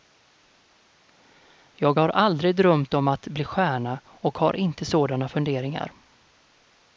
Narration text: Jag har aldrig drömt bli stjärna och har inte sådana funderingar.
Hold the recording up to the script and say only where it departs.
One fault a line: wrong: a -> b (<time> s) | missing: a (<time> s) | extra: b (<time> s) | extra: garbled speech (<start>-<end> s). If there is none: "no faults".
extra: om att (2.9 s)